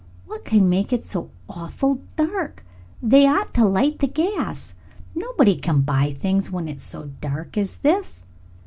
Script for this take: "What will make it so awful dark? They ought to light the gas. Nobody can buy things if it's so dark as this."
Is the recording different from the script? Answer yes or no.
yes